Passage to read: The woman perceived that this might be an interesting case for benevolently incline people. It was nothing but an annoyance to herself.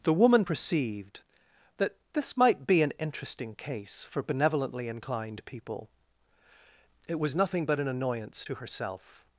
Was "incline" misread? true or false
true